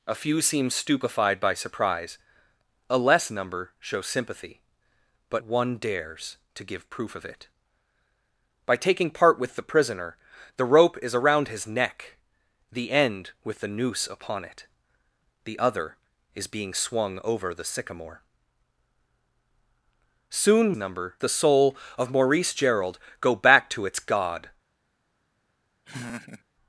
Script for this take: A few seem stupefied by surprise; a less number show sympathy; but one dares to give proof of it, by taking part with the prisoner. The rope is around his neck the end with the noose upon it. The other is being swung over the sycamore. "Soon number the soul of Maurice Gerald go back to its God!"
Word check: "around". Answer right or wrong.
right